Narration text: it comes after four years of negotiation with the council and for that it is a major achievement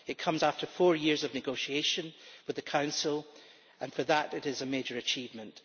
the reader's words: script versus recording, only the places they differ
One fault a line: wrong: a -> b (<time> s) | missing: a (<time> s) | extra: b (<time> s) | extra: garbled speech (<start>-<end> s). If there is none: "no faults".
no faults